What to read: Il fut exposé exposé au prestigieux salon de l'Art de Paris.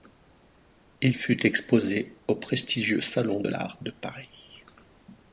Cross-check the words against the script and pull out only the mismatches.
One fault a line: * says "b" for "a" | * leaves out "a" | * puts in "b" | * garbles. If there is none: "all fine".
* leaves out "exposé"